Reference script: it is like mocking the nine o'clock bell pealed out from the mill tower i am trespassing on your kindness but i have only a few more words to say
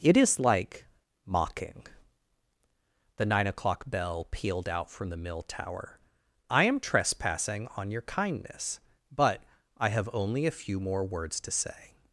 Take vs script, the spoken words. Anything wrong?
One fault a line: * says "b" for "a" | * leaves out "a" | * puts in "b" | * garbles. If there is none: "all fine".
all fine